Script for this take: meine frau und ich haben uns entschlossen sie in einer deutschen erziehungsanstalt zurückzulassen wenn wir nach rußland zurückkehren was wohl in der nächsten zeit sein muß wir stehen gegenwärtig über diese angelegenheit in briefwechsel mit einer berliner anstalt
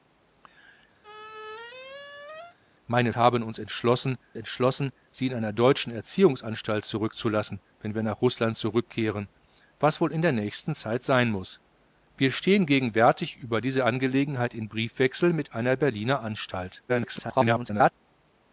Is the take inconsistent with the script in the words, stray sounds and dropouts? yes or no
yes